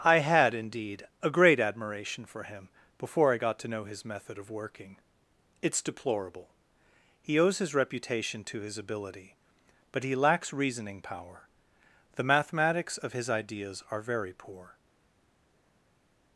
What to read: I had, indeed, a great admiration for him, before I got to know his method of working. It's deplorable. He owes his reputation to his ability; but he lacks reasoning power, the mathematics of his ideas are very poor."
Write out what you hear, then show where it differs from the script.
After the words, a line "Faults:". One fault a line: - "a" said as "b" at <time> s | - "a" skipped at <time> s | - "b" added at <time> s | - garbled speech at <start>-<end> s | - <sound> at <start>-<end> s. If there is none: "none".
I had, indeed, a great admiration for him, before I got to know his method of working. It's deplorable. He owes his reputation to his ability; but he lacks reasoning power, the mathematics of his ideas are very poor."
Faults:
none